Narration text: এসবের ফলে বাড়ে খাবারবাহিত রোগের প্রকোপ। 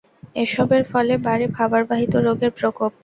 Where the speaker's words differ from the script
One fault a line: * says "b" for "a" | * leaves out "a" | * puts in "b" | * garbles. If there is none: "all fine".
all fine